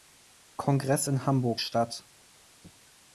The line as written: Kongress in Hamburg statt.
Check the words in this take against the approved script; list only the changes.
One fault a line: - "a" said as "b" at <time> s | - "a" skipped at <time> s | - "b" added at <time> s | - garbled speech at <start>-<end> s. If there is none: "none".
none